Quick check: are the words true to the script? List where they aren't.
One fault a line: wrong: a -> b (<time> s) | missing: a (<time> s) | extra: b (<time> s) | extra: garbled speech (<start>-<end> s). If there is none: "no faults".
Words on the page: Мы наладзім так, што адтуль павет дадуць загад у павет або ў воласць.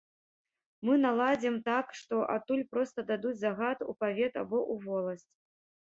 wrong: павет -> проста (2.7 s)